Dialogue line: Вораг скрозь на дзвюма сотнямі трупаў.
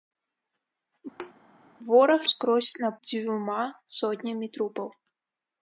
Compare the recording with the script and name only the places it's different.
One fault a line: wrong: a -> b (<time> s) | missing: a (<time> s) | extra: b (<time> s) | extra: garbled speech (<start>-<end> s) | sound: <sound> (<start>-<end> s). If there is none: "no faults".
sound: thud (1.2-1.3 s)